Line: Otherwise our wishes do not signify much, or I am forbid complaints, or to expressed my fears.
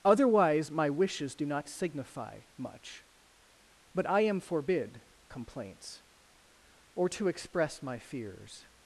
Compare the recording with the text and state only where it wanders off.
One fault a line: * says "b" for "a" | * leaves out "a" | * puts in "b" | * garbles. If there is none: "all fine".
* says "my" for "our"
* says "but" for "or"
* says "express" for "expressed"